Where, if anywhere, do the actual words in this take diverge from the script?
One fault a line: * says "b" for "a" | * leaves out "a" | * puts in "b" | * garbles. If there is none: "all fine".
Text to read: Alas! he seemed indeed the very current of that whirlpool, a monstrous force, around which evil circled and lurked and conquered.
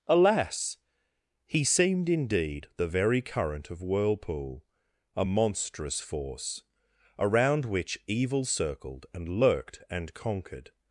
* leaves out "that"